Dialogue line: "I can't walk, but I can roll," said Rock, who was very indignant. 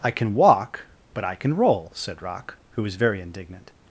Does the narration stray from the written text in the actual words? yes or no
yes